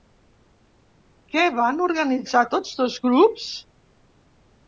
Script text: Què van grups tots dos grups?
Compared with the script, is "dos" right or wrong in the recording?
right